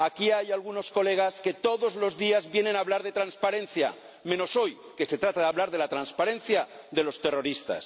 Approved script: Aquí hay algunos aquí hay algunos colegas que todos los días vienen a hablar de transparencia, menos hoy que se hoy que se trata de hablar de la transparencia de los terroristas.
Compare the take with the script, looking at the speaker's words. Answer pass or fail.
fail